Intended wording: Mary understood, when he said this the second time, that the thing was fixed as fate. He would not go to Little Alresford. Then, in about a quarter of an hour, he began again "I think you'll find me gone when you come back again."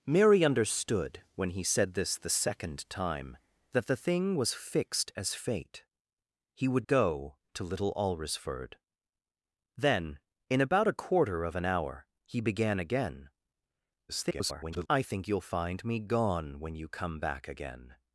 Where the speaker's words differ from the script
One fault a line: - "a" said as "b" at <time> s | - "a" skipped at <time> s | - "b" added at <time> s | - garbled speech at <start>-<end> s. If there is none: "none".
- "not" skipped at 6.9 s
- garbled speech at 14.1-14.9 s